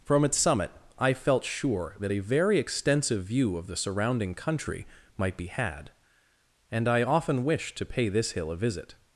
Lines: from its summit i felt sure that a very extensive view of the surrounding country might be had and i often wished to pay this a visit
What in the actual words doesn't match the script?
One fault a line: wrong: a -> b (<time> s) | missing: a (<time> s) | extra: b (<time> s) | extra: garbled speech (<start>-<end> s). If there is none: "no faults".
extra: hill (8.3 s)